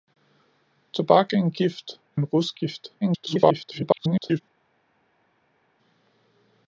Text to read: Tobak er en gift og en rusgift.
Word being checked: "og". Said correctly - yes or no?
no